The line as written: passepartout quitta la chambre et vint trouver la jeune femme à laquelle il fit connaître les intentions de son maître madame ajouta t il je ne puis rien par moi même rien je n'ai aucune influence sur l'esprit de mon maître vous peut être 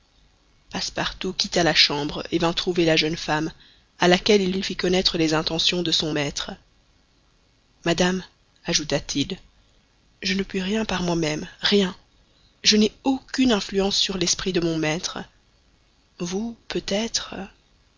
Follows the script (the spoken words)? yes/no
no